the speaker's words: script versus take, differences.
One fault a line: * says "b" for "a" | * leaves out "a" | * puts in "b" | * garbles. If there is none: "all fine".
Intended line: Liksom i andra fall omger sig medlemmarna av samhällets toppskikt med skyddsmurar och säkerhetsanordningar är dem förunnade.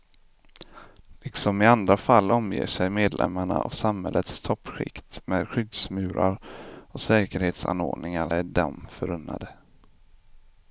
all fine